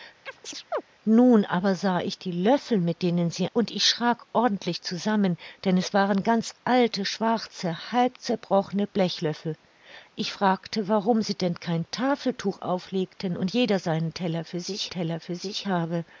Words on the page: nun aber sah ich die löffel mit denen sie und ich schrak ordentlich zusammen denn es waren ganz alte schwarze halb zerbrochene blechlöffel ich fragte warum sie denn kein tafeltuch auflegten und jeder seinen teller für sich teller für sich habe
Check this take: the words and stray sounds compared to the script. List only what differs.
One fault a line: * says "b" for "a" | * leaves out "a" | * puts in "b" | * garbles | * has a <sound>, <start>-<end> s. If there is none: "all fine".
* has a chirp, 0.3-0.8 s